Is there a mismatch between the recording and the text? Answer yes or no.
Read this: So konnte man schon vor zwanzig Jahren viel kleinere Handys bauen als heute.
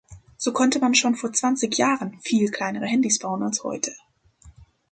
no